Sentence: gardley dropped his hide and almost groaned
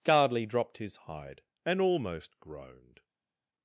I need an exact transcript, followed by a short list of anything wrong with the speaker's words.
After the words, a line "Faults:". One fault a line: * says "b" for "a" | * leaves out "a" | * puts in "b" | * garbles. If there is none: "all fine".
gardley dropped his hide and almost groaned
Faults:
all fine